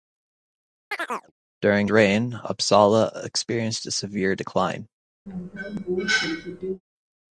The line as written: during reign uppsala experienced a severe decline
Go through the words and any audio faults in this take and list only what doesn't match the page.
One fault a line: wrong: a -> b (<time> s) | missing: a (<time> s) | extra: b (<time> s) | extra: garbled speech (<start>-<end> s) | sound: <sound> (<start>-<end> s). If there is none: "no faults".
sound: chirp (0.9-1.3 s)
sound: cough (5.3-6.8 s)